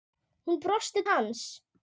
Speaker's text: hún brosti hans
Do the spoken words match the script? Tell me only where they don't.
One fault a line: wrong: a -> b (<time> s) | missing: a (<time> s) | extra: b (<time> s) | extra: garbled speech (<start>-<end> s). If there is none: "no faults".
no faults